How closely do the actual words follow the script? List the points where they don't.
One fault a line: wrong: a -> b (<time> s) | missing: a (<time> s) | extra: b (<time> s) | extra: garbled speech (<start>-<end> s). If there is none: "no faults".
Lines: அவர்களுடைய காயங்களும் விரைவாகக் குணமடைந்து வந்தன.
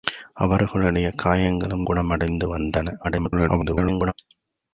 missing: விரைவாகக் (1.8 s)
extra: garbled speech (3.0-4.1 s)